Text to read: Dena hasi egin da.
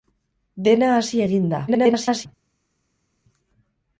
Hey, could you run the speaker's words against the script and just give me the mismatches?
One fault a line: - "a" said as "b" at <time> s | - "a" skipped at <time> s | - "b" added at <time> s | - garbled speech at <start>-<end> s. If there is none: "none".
- garbled speech at 1.7-2.3 s